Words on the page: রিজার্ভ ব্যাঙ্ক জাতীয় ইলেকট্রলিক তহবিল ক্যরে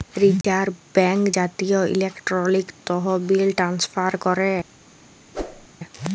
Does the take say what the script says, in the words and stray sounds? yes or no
no